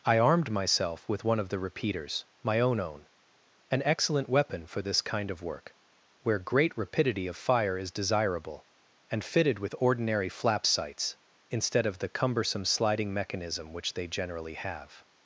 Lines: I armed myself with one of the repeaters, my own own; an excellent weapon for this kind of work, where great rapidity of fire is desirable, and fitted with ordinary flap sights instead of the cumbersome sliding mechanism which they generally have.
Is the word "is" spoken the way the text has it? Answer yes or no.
yes